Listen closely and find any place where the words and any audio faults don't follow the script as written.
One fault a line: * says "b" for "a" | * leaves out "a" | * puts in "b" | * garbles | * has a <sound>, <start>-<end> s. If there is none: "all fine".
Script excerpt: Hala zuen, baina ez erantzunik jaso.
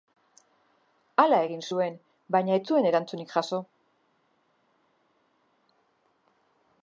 * puts in "egin"
* puts in "zuen"